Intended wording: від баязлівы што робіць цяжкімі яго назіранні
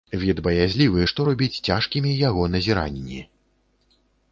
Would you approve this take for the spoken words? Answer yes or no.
yes